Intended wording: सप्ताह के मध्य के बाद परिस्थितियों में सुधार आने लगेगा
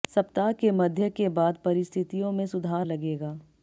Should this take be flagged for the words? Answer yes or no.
yes